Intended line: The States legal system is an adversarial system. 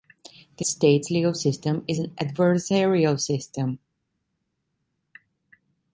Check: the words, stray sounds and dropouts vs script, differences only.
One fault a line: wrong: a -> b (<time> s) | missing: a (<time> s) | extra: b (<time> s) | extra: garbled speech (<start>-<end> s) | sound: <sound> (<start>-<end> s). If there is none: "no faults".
no faults